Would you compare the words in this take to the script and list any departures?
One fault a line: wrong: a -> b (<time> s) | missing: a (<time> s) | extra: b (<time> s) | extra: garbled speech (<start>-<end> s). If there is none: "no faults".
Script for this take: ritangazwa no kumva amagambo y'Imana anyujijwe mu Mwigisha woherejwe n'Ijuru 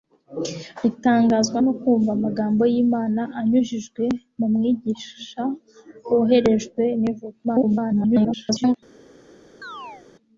extra: garbled speech (7.4-8.8 s)